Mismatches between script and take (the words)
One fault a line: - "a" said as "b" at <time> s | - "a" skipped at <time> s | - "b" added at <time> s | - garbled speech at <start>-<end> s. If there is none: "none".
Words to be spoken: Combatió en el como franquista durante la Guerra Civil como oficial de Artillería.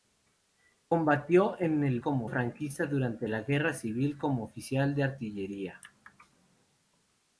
none